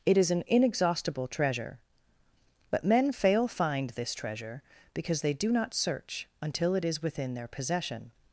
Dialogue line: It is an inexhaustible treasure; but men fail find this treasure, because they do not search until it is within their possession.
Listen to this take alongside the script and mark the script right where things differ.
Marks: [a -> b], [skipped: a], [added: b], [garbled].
It is an inexhaustible treasure; but men fail find this treasure, because they do not search until it is within their possession.